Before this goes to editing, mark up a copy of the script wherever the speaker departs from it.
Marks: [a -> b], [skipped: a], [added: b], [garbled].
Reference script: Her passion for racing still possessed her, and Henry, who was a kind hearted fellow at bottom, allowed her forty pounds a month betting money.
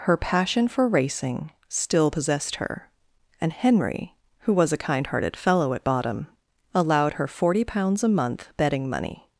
Her passion for racing still possessed her, and Henry, who was a kind hearted fellow at bottom, allowed her forty pounds a month betting money.